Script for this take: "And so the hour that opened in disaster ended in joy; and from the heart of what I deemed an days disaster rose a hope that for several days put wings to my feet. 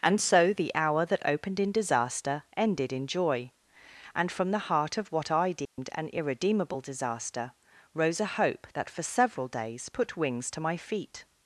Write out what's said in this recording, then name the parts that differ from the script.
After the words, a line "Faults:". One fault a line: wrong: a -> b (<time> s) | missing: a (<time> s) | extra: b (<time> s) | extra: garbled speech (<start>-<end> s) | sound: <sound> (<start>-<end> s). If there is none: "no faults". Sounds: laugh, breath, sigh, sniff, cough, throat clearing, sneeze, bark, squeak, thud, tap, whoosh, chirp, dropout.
"And so the hour that opened in disaster ended in joy; and from the heart of what I deemed an irredeemable disaster rose a hope that for several days put wings to my feet.
Faults:
sound: dropout (5.7-5.8 s)
wrong: days -> irredeemable (6.1 s)